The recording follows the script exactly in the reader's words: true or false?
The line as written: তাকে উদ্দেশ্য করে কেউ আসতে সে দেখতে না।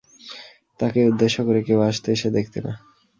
true